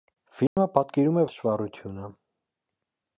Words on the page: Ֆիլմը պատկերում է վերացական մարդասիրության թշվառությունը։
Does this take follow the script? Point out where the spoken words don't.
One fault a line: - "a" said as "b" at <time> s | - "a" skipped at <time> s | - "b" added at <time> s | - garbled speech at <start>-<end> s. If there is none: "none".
- "վերացական մարդասիրության" skipped at 1.2 s